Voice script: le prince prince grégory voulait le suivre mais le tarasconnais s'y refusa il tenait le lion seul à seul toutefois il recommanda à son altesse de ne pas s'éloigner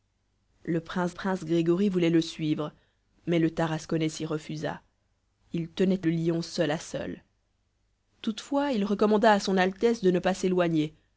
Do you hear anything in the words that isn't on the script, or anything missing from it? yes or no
no